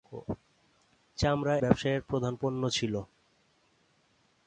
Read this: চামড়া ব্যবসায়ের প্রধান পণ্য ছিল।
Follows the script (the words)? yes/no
yes